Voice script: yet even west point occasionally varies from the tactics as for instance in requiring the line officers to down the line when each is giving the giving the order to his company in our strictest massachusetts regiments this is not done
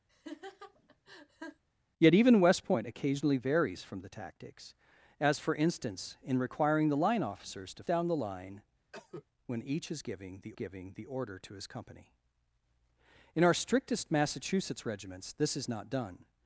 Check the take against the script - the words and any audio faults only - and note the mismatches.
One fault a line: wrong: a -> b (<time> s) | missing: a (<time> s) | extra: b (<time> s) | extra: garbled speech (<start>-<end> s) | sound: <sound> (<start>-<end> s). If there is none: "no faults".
sound: laugh (0.1-1.6 s)
sound: cough (8.9-9.3 s)